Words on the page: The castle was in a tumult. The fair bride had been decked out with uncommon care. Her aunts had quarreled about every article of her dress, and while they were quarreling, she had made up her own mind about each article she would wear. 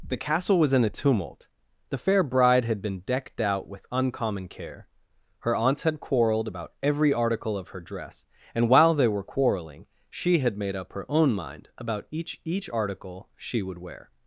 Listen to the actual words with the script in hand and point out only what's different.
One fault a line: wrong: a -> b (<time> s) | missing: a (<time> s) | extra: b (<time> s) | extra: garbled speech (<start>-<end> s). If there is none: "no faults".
extra: each (12.4 s)